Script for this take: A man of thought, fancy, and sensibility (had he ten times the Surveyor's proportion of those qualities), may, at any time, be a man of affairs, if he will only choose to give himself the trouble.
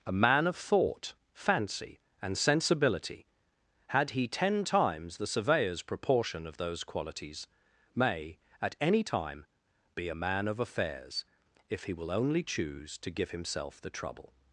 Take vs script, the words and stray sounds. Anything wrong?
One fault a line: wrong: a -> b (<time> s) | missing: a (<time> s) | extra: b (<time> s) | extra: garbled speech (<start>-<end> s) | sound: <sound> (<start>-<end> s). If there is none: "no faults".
no faults